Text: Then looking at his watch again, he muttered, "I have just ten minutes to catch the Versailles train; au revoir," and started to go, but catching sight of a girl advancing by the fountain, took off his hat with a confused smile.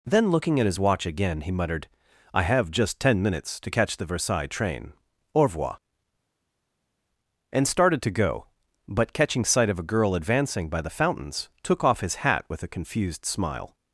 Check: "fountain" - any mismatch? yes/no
yes